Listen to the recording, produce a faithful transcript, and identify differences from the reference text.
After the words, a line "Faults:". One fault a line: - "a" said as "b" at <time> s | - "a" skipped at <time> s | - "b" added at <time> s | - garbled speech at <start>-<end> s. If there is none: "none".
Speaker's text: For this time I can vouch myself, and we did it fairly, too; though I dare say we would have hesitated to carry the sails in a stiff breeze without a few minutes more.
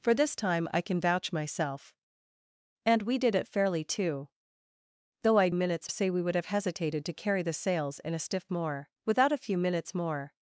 For this time I can vouch myself, and we did it fairly, too; though I minutes say we would have hesitated to carry the sails in a stiff more without a few minutes more.
Faults:
- "dare" said as "minutes" at 5.5 s
- "breeze" said as "more" at 8.5 s